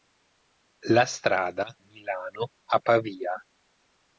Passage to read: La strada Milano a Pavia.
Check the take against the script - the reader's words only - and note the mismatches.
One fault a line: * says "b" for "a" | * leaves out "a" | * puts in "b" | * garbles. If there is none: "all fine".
all fine